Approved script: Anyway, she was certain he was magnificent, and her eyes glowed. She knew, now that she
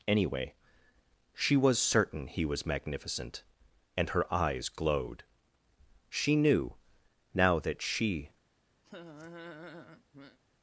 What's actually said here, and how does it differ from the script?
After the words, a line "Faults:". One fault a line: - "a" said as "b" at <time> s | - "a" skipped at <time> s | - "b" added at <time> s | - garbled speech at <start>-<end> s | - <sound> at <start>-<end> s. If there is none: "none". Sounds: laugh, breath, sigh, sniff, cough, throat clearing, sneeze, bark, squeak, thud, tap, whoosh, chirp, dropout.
Anyway, she was certain he was magnificent, and her eyes glowed. She knew, now that she
Faults:
- laugh at 8.8-10.4 s